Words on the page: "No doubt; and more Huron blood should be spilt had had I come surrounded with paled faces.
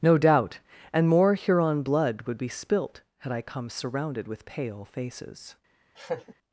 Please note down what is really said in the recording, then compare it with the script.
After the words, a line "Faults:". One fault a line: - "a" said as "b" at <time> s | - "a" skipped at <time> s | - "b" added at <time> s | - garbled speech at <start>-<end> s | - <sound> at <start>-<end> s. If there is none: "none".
"No doubt; and more Huron blood would be spilt had I come surrounded with pale faces.
Faults:
- "should" said as "would" at 2.2 s
- "had" skipped at 3.3 s
- "paled" said as "pale" at 4.4 s
- laugh at 6.0-6.3 s